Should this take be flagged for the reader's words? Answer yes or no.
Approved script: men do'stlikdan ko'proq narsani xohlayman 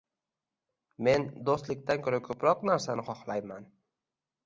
yes